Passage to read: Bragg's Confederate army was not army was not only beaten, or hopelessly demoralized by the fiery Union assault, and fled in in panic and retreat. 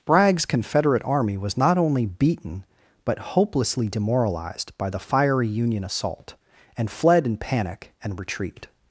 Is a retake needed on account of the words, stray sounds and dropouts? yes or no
yes